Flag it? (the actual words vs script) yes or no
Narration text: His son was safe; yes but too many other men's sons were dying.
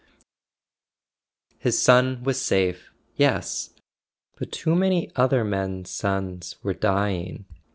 no